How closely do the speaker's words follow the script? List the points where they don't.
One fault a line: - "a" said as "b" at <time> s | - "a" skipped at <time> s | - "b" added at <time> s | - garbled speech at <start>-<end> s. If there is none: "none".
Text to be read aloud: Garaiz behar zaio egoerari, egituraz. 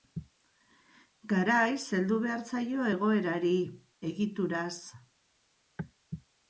- "heldu" added at 2.0 s